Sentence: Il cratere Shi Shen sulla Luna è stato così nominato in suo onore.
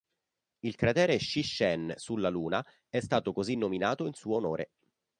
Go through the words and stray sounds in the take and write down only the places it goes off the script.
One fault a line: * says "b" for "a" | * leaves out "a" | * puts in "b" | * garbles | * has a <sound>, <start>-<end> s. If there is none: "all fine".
all fine